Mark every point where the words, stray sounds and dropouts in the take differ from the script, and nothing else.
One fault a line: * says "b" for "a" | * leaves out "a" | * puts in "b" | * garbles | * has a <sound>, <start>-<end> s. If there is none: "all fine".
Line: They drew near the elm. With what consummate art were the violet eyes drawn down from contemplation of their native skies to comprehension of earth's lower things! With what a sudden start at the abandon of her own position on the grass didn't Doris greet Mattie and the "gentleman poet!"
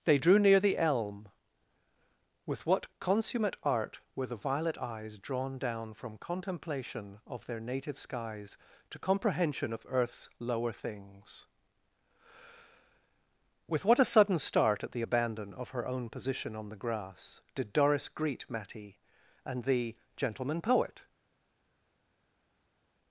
* says "did" for "didn't"